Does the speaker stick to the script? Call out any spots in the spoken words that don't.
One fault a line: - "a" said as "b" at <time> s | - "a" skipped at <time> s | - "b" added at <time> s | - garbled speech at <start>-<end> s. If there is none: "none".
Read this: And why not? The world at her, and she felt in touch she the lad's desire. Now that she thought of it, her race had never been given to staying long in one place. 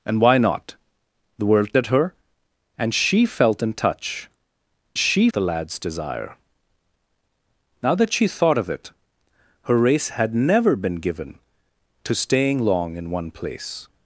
none